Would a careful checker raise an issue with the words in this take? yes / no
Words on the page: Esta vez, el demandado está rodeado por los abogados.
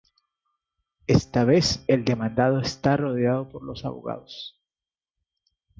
no